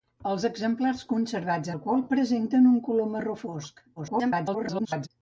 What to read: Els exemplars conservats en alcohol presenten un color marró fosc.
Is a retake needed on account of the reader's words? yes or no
yes